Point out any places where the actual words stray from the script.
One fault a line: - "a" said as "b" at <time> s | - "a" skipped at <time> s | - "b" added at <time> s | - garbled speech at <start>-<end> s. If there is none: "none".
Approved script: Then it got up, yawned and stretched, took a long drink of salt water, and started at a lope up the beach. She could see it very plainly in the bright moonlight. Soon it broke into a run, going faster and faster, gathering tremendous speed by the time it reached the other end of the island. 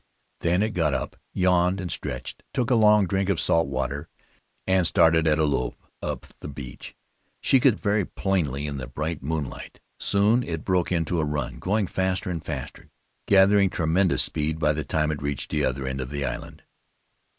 - "see" skipped at 7.8 s